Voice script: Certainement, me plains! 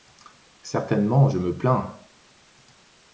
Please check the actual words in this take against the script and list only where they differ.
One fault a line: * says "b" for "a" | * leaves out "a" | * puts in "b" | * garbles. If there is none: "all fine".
* puts in "je"